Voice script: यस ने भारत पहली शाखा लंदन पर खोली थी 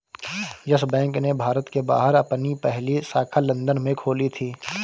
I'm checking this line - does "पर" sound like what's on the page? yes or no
no